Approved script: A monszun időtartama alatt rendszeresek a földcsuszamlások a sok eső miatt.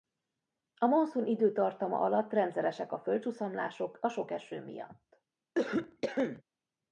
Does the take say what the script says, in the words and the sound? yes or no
no